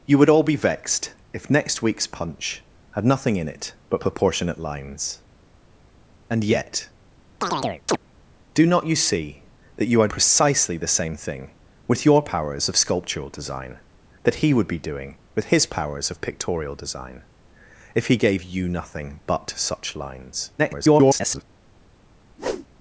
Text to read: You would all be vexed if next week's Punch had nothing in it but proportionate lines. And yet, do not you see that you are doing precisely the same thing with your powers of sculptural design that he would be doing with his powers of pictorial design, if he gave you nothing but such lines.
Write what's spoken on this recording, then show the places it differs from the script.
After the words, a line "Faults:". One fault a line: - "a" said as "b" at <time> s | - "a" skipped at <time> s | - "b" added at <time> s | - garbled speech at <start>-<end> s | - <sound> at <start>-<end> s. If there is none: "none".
You would all be vexed if next week's Punch had nothing in it but proportionate lines. And yet, do not you see that you are precisely the same thing with your powers of sculptural design that he would be doing with his powers of pictorial design, if he gave you nothing but such lines. [garbled]
Faults:
- chirp at 7.4-8.0 s
- "doing" skipped at 10.1 s
- garbled speech at 20.6-21.4 s
- whoosh at 22.4-22.7 s